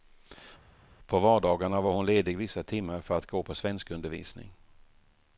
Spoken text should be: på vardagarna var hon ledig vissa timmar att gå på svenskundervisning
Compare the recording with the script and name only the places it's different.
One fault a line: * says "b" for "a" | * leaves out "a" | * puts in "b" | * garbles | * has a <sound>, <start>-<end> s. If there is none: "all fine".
* puts in "för"